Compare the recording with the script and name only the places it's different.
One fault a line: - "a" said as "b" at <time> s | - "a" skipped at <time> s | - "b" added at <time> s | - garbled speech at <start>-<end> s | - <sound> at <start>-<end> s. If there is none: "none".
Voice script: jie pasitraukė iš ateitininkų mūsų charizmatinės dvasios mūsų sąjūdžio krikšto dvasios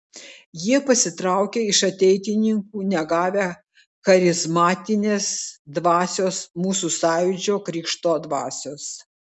- "mūsų" said as "negavę" at 3.0 s